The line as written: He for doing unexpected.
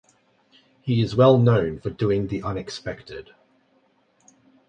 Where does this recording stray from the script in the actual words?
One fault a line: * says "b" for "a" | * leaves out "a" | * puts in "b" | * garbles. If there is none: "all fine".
* puts in "is well known"
* puts in "the"